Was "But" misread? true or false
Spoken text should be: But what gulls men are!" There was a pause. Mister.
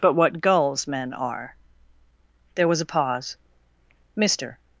false